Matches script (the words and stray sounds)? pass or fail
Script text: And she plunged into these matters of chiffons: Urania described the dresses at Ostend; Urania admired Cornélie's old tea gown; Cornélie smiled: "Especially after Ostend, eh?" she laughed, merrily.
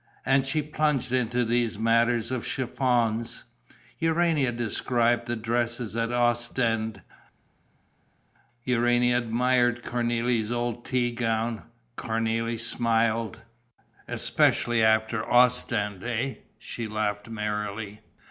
pass